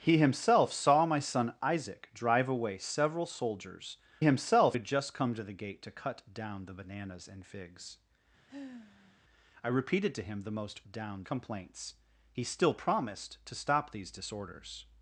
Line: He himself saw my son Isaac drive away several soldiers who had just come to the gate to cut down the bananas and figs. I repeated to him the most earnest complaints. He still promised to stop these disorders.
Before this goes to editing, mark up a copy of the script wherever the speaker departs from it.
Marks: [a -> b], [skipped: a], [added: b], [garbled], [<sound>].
He himself saw my son Isaac drive away several soldiers [who -> himself] had just come to the gate to cut down the bananas and figs. [sigh] I repeated to him the most [earnest -> down] complaints. He still promised to stop these disorders.